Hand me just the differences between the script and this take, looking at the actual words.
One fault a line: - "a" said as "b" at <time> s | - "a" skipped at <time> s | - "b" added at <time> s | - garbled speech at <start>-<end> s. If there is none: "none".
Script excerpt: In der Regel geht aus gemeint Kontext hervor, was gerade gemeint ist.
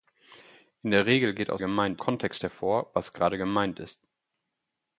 none